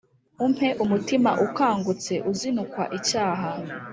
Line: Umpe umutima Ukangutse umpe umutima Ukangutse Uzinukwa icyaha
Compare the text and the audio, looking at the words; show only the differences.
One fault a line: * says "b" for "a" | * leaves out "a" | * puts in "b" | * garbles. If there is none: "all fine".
* leaves out "umpe umutima Ukangutse"